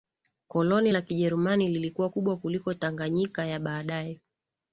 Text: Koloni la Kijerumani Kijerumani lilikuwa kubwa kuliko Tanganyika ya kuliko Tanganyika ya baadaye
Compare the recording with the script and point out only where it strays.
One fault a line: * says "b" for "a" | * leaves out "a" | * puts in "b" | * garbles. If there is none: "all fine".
* leaves out "Kijerumani"
* leaves out "kuliko Tanganyika ya"